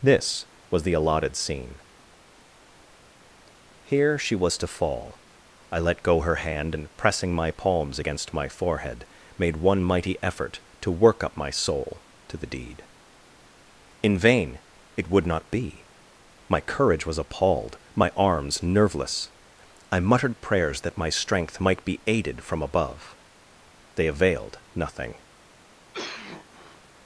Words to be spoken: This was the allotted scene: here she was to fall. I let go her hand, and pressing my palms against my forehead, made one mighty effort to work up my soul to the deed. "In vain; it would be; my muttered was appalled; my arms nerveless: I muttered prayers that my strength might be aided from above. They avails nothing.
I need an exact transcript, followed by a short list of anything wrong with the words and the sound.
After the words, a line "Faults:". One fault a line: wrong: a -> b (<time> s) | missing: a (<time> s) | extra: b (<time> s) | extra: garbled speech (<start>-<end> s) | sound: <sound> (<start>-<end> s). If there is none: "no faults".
This was the allotted scene: here she was to fall. I let go her hand, and pressing my palms against my forehead, made one mighty effort to work up my soul to the deed. "In vain; it would not be; my courage was appalled; my arms nerveless: I muttered prayers that my strength might be aided from above. They availed nothing.
Faults:
extra: not (15.3 s)
wrong: muttered -> courage (16.6 s)
wrong: avails -> availed (24.1 s)
sound: cough (25.9-26.8 s)